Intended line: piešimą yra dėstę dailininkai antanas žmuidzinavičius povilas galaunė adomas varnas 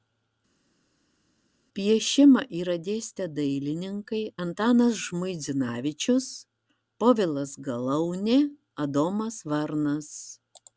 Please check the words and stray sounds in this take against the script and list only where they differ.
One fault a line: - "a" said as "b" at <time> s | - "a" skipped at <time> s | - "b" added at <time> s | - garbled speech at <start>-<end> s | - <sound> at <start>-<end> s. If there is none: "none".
none